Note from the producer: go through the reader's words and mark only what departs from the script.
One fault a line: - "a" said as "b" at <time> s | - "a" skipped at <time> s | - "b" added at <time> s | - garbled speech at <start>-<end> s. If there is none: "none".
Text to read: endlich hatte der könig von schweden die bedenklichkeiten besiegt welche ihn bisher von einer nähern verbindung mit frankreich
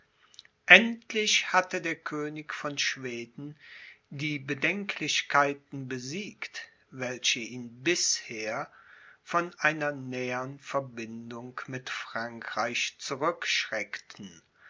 none